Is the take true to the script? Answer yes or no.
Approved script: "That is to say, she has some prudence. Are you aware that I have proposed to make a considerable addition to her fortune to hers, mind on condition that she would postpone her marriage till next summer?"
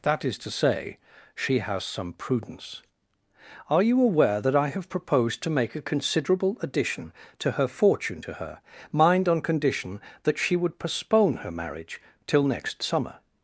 no